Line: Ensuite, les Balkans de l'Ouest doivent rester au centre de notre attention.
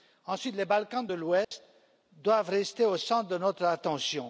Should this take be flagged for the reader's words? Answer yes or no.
no